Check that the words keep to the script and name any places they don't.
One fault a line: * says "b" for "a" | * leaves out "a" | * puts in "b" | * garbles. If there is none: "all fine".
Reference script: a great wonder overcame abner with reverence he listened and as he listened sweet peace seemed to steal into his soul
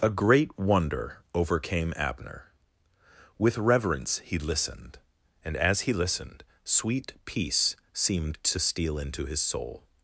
all fine